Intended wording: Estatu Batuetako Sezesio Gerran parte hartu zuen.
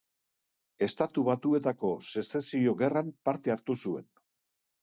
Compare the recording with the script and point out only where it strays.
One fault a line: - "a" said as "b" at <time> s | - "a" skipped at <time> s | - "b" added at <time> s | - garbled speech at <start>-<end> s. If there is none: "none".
none